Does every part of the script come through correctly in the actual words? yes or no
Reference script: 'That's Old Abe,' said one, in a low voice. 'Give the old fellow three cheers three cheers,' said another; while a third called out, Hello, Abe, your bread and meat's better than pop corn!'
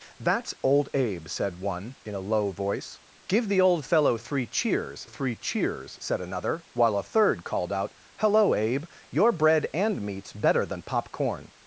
yes